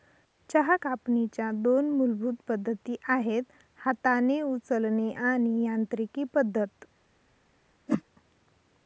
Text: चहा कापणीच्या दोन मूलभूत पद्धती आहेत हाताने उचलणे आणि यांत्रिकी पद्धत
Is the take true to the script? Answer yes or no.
yes